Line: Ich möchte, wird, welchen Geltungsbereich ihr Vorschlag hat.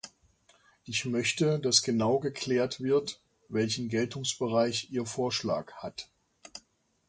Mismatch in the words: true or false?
true